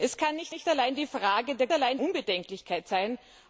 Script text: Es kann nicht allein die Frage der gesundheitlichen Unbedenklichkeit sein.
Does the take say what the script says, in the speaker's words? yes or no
no